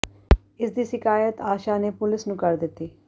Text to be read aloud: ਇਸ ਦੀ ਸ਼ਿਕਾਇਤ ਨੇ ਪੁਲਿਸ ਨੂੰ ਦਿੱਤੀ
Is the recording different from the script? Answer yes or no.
yes